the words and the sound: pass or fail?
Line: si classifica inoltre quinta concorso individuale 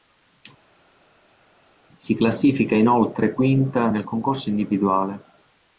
fail